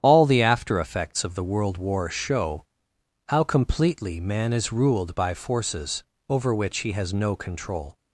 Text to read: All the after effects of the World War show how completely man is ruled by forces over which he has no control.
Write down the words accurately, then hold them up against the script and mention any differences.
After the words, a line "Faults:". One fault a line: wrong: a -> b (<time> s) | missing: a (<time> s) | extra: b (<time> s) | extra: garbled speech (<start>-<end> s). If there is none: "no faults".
All the after effects of the World War show how completely man is ruled by forces over which he has no control.
Faults:
no faults